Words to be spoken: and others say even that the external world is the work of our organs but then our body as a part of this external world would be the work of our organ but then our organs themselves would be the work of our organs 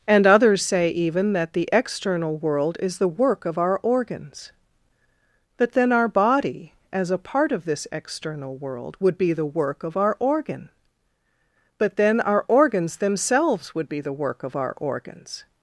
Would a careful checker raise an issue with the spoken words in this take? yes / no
no